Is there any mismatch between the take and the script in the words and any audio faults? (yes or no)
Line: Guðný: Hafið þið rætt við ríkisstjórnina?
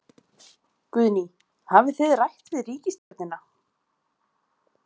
yes